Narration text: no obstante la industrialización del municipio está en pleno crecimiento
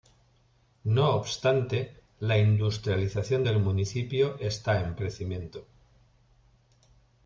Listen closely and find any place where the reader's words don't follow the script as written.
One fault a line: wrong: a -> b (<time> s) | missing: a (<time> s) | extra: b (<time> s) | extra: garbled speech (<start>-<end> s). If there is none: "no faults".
missing: pleno (5.0 s)